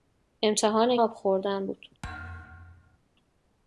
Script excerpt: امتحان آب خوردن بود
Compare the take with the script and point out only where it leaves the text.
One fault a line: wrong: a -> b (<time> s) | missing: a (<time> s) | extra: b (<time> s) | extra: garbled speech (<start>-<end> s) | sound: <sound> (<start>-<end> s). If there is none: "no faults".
sound: thud (2.0-3.0 s)